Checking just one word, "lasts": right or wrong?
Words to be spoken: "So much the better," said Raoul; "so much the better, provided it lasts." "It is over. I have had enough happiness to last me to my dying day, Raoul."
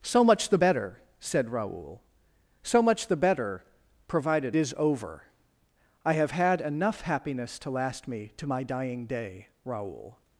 wrong